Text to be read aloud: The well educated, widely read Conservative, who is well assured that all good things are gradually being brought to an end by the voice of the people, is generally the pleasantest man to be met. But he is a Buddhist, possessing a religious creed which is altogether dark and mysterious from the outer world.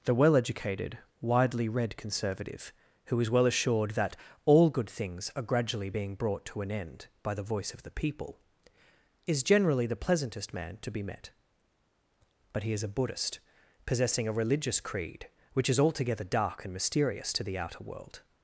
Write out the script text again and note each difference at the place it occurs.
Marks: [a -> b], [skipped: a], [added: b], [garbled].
The well educated, widely read Conservative, who is well assured that all good things are gradually being brought to an end by the voice of the people, is generally the pleasantest man to be met. But he is a Buddhist, possessing a religious creed which is altogether dark and mysterious [from -> to] the outer world.